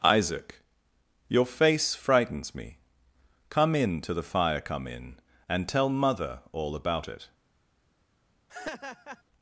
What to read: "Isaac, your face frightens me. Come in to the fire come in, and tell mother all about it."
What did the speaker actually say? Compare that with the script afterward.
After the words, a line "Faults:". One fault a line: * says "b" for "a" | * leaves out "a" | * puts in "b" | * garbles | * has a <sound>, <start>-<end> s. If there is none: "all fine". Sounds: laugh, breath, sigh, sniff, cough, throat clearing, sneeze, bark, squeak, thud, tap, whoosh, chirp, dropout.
"Isaac, your face frightens me. Come in to the fire come in, and tell mother all about it."
Faults:
* has a laugh, 8.5-9.2 s